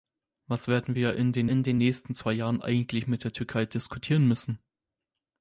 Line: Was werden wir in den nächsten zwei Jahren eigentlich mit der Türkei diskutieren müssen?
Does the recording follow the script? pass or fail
fail